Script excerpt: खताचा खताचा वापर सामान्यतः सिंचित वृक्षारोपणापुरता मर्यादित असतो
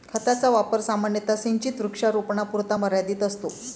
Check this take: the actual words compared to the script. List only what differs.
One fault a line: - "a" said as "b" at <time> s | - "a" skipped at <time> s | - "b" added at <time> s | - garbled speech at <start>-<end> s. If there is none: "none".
- "खताचा" skipped at 0.5 s